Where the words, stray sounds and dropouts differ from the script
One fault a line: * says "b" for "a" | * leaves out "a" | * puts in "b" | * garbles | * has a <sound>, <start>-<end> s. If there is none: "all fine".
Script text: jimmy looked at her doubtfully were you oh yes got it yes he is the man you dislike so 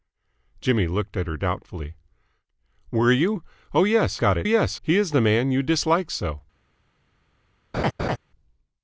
* has a laugh, 7.7-8.2 s